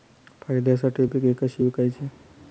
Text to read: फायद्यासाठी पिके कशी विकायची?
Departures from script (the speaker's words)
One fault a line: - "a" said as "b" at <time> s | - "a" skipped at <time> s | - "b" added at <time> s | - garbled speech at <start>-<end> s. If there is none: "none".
none